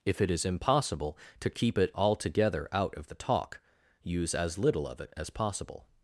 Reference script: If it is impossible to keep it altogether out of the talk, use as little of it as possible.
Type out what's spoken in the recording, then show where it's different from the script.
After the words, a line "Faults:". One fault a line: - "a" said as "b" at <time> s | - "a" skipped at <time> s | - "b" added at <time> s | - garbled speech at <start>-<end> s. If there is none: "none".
If it is impossible to keep it altogether out of the talk, use as little of it as possible.
Faults:
none